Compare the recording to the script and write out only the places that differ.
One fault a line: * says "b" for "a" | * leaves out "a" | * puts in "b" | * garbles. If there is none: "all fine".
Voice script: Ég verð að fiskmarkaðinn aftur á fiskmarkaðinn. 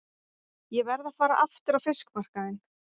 * says "fara" for "fiskmarkaðinn"